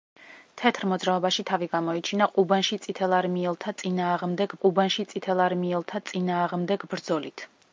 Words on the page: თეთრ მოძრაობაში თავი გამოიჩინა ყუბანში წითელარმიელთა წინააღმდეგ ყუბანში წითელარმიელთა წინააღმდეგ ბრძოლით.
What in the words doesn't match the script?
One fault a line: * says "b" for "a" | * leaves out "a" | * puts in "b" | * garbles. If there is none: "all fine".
all fine